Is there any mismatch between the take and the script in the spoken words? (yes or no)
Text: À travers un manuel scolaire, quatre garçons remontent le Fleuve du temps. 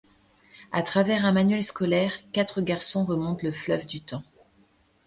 no